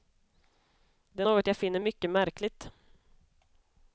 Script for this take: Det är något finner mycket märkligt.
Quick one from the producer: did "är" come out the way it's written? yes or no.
yes